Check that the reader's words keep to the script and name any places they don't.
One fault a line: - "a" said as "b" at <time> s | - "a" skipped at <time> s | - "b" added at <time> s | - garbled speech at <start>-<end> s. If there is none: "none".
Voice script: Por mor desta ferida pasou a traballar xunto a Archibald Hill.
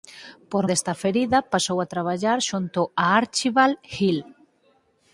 - "mor" skipped at 0.7 s